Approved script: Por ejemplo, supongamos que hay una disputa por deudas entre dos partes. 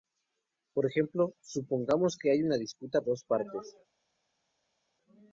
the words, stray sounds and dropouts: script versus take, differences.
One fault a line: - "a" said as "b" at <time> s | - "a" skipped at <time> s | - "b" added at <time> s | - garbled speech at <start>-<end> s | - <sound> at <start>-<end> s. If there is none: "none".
- "por deudas entre" skipped at 3.0 s